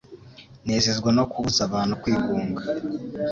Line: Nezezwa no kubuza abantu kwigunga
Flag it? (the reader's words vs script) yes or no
no